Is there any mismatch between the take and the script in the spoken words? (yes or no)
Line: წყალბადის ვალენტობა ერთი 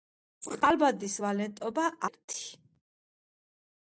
no